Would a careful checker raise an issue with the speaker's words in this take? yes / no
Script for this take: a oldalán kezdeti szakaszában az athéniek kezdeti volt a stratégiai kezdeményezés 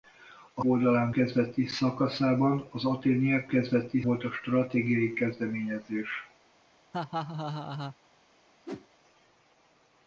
no